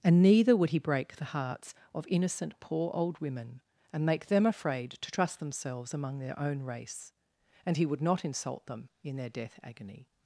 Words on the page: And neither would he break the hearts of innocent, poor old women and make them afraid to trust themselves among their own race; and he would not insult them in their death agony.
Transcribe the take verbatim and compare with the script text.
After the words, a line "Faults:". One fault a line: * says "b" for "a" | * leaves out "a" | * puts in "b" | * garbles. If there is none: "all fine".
And neither would he break the hearts of innocent, poor old women and make them afraid to trust themselves among their own race; and he would not insult them in their death agony.
Faults:
all fine